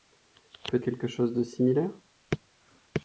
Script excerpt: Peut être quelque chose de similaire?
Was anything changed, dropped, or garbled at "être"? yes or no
yes